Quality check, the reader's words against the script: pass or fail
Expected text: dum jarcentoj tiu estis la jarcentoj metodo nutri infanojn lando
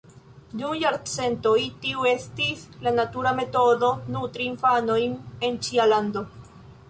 fail